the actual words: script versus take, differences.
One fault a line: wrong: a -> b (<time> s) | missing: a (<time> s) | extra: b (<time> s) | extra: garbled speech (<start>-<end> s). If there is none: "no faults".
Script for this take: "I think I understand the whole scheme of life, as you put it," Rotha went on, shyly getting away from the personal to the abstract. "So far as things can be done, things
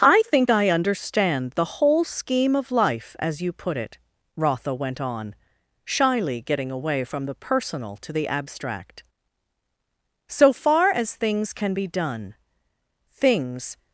no faults